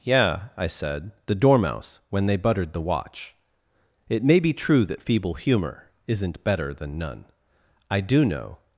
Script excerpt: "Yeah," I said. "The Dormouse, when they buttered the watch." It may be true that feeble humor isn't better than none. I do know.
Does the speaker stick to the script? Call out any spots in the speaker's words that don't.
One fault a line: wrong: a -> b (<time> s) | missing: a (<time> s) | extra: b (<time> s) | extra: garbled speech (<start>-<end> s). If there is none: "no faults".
no faults